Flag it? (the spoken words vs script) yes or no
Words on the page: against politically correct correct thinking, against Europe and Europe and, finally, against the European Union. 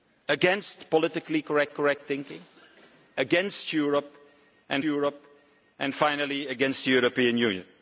no